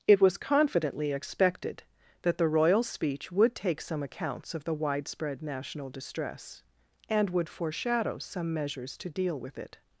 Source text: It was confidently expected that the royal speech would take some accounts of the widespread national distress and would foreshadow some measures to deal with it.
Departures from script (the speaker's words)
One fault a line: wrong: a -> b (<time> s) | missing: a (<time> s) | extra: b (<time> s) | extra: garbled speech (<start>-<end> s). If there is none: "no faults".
no faults